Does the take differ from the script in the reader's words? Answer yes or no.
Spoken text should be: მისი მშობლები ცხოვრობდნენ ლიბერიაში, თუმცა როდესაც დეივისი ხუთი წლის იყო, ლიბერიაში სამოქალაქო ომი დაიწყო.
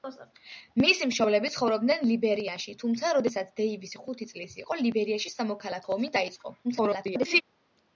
yes